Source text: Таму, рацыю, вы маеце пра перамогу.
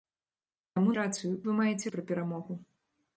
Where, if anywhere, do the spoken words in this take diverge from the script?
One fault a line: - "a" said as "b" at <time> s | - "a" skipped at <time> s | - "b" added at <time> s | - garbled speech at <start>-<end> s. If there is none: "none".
none